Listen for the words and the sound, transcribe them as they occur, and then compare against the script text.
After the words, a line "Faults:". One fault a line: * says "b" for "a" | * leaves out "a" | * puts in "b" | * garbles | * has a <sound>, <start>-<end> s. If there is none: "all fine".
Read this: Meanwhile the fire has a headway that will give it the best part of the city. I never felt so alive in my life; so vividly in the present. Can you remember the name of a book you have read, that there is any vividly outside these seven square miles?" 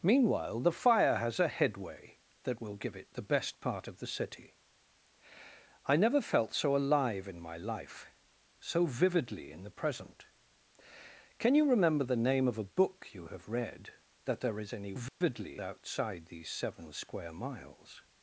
Meanwhile the fire has a headway that will give it the best part of the city. I never felt so alive in my life; so vividly in the present. Can you remember the name of a book you have read, that there is any vividly outside these seven square miles?"
Faults:
* has a dropout, 15.1-15.2 s